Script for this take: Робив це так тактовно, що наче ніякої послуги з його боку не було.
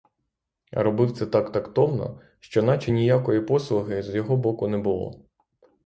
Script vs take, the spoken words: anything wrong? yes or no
no